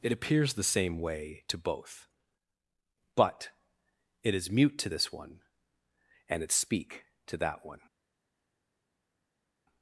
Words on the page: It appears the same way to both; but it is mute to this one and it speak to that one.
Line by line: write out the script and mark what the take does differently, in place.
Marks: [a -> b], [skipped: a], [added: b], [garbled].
It appears the same way to both; but it is mute to this one and it speak to that one.